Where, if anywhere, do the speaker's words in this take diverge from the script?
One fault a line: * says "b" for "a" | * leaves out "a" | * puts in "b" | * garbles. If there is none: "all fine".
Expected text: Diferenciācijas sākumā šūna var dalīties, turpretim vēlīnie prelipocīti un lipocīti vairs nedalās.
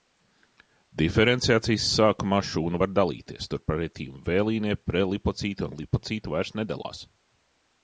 all fine